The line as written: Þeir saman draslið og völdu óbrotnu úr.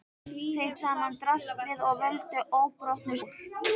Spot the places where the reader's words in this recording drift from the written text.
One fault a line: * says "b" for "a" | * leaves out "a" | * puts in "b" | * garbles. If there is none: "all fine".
all fine